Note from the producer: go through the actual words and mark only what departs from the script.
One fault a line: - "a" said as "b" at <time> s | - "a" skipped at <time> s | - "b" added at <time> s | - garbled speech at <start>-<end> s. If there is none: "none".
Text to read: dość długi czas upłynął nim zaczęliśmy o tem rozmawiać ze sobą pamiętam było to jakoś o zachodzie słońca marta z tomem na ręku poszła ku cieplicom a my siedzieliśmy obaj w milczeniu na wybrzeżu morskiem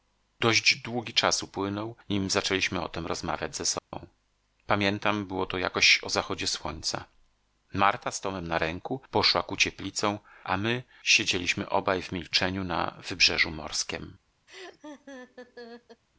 none